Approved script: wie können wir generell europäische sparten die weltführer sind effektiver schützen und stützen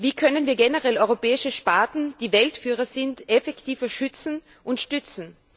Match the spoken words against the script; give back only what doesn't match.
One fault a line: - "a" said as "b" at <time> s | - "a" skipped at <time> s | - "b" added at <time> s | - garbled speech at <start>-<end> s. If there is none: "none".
none